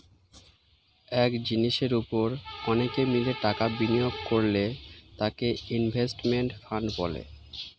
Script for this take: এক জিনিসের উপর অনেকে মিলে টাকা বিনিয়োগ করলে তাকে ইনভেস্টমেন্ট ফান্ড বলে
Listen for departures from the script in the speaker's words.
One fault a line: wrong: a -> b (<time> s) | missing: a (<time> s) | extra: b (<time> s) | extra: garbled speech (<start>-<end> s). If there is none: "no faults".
no faults